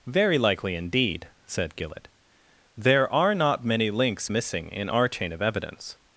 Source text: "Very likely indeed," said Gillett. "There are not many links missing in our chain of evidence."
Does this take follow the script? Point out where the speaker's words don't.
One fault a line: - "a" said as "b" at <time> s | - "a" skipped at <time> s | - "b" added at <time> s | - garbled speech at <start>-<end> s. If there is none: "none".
none